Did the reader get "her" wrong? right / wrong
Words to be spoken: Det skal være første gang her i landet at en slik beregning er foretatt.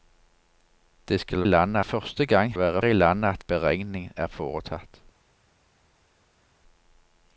wrong